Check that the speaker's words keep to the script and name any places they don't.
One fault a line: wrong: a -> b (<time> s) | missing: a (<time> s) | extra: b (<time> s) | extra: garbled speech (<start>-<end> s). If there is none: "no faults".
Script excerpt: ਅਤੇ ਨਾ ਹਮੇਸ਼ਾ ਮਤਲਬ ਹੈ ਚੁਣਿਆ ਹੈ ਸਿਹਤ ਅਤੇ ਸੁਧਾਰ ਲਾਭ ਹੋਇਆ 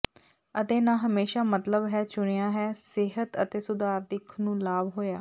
extra: ਦਿੱਖ ਨੂੰ (4.1 s)